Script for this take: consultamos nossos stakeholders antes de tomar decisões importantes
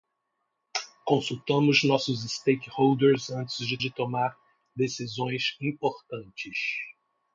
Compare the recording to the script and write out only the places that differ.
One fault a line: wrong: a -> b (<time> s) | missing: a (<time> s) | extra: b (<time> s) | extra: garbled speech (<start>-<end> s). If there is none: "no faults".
extra: de (3.8 s)